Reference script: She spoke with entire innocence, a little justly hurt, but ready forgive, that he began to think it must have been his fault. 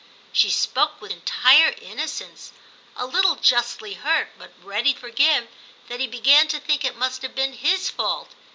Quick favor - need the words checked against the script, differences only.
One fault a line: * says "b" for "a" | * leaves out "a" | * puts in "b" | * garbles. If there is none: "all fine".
all fine